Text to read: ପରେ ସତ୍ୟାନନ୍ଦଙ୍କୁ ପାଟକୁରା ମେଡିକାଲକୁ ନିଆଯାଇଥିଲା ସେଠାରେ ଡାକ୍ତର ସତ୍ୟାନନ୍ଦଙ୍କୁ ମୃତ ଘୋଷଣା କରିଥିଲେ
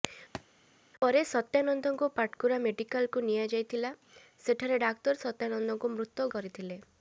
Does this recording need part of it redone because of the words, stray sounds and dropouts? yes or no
yes